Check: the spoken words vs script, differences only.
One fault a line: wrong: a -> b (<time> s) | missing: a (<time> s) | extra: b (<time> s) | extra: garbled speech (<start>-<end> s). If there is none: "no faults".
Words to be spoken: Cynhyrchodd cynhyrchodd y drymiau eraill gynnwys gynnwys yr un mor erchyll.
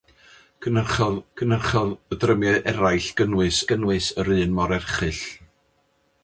no faults